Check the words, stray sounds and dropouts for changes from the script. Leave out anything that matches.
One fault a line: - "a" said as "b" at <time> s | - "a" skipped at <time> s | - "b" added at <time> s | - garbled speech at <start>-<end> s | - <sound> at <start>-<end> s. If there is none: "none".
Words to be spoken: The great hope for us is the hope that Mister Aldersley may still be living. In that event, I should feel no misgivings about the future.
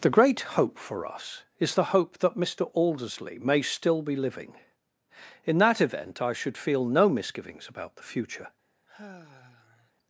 - sigh at 8.9-9.9 s